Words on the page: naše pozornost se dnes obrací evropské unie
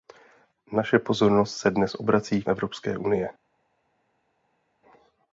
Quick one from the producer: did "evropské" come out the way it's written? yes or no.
yes